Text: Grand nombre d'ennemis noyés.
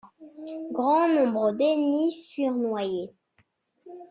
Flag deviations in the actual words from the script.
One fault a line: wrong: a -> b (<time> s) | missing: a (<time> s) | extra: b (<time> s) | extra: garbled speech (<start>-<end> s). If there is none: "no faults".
extra: furent (2.2 s)